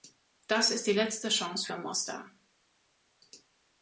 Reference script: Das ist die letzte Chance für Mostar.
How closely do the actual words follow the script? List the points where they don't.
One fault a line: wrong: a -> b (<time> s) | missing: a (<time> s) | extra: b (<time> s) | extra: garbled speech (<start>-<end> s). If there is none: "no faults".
no faults